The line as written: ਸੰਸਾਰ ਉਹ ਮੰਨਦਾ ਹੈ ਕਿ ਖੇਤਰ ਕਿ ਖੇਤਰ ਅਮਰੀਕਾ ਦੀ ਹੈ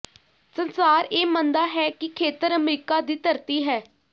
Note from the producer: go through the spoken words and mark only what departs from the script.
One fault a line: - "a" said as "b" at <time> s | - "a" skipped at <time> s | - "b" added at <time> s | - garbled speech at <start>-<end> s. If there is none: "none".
- "ਉਹ" said as "ਇਹ" at 1.1 s
- "ਕਿ ਖੇਤਰ" skipped at 2.5 s
- "ਧਰਤੀ" added at 3.2 s